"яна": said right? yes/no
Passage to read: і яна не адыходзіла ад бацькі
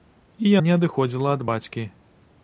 no